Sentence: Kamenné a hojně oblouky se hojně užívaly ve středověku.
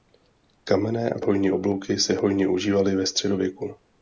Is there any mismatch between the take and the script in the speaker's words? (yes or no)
no